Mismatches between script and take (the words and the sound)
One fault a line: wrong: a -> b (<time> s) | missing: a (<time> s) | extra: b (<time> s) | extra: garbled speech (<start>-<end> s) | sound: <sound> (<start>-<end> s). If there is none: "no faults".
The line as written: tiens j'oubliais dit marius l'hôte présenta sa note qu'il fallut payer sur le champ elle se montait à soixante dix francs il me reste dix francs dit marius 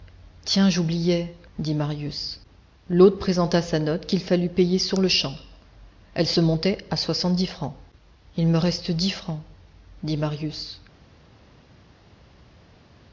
no faults